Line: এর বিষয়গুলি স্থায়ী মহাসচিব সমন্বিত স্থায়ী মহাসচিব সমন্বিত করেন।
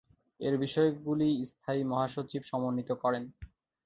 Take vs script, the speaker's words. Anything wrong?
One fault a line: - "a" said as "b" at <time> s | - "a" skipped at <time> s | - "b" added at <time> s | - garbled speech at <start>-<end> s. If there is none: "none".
- "স্থায়ী মহাসচিব সমন্বিত" skipped at 2.9 s